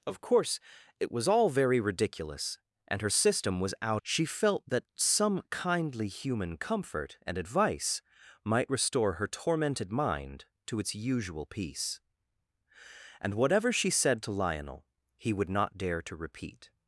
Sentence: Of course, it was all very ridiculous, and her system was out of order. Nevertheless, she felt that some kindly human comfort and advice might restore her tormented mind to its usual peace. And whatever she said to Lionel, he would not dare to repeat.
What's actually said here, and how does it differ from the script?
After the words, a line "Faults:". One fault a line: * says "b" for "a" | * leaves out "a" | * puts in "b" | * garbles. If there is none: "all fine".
Of course, it was all very ridiculous, and her system was out she felt that some kindly human comfort and advice might restore her tormented mind to its usual peace. And whatever she said to Lionel, he would not dare to repeat.
Faults:
* leaves out "of order Nevertheless"